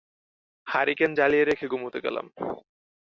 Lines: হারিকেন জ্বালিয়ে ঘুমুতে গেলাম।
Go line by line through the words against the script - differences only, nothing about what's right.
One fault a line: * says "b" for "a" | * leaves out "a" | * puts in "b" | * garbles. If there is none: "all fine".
* puts in "রেখে"